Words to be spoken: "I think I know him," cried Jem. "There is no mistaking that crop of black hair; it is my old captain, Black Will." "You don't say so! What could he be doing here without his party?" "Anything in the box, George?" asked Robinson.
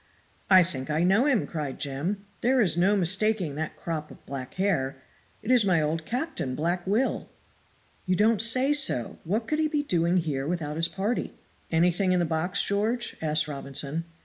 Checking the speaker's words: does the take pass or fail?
pass